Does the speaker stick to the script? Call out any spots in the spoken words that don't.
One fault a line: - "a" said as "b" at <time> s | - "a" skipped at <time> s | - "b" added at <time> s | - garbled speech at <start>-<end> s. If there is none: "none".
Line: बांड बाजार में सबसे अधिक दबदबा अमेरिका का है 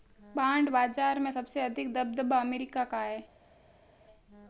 none